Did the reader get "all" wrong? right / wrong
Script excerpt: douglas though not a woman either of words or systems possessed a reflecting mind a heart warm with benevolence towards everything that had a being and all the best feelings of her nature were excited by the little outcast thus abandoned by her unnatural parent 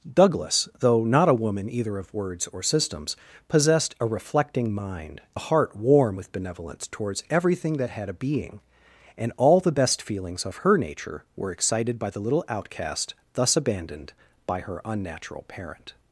right